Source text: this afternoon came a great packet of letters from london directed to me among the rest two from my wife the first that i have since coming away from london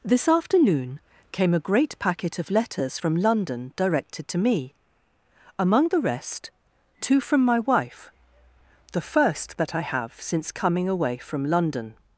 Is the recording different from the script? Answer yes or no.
no